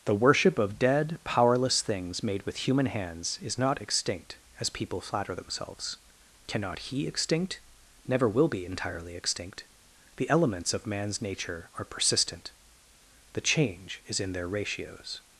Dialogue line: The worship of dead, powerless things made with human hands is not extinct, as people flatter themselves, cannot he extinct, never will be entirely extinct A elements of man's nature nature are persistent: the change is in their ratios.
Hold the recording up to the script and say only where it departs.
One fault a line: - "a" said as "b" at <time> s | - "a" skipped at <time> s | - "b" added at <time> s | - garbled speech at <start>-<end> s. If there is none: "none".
- "A" said as "The" at 10.1 s
- "nature" skipped at 11.7 s